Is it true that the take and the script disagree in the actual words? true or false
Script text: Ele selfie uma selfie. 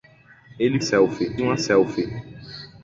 false